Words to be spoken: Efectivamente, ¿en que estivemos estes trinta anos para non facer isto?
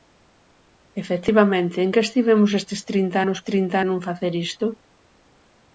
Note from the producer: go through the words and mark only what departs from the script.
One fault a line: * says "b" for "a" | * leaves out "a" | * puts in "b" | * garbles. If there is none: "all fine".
* says "trinta" for "para"